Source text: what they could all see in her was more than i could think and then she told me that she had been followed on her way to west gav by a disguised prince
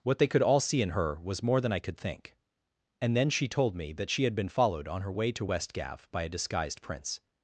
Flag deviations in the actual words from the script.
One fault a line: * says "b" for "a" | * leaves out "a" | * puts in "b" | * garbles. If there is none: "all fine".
all fine